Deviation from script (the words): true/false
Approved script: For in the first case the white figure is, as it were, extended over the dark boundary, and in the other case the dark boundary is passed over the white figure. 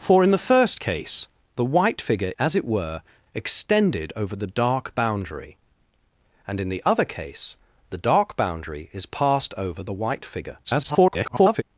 true